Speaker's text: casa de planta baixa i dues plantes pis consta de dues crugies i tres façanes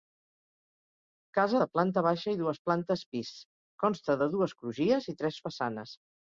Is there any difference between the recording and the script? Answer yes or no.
no